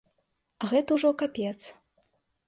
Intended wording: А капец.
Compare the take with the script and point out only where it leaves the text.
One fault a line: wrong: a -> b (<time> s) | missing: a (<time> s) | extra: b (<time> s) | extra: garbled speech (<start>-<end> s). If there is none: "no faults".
extra: гэта ўжо (0.7 s)